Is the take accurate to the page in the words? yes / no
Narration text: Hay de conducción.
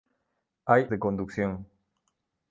yes